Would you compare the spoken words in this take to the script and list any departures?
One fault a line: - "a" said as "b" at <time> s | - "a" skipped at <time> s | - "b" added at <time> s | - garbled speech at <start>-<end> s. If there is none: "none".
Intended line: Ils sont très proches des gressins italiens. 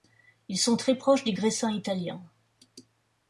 none